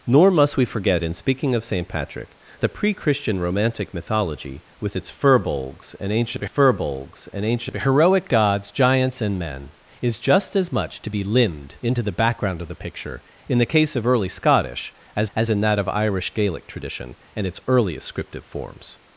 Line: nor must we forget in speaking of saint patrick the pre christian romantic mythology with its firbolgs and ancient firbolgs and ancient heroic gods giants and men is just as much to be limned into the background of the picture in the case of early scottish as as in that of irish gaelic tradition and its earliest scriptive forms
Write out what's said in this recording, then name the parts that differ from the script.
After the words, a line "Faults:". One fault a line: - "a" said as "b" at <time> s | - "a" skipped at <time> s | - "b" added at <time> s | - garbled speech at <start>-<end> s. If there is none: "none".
nor must we forget in speaking of saint patrick the pre christian romantic mythology with its firbolgs and ancient firbolgs and ancient heroic gods giants and men is just as much to be limned into the background of the picture in the case of early scottish as as in that of irish gaelic tradition and its earliest scriptive forms
Faults:
none